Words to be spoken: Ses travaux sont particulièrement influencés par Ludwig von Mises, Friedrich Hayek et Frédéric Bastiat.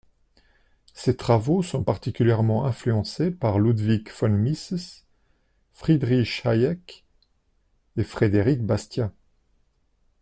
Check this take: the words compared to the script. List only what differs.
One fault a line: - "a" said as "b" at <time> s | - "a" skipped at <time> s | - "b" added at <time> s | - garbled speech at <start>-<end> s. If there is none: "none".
none